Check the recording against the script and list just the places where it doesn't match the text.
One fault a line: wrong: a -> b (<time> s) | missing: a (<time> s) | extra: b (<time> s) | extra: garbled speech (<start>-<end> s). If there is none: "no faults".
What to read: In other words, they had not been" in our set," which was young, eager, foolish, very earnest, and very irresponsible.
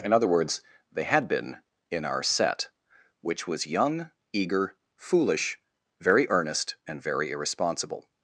missing: not (1.3 s)